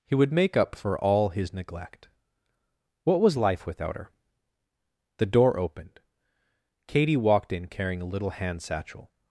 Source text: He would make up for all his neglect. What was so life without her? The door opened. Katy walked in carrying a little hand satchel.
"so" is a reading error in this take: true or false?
true